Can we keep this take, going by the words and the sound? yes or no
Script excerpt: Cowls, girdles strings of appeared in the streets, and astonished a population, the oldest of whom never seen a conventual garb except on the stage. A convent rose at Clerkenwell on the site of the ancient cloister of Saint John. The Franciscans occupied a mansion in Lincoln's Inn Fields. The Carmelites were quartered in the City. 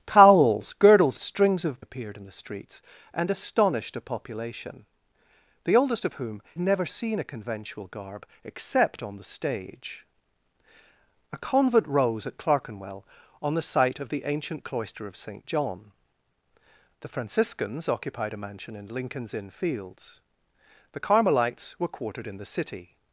yes